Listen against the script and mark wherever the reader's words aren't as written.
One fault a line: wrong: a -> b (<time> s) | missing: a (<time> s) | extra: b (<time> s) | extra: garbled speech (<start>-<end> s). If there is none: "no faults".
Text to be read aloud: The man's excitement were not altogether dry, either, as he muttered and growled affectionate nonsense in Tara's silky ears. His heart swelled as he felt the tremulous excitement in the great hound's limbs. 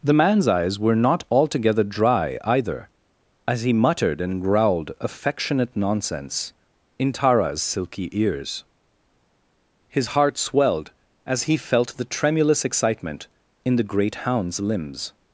wrong: excitement -> eyes (0.5 s)